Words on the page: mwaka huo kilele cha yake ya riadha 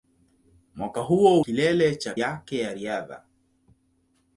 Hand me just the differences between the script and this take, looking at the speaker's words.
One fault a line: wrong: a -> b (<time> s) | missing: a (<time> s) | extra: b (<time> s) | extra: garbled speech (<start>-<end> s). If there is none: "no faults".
no faults